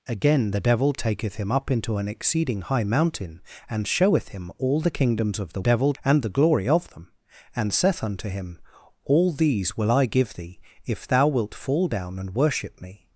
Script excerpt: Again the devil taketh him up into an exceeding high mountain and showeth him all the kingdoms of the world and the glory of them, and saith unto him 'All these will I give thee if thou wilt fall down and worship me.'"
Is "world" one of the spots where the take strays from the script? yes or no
yes